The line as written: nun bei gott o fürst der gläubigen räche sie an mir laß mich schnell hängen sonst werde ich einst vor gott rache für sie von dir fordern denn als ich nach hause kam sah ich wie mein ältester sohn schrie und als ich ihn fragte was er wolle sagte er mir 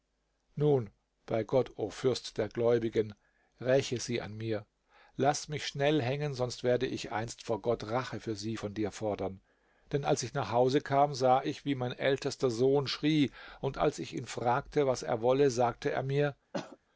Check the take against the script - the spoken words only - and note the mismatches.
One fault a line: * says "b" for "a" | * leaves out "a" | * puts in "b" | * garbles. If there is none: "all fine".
all fine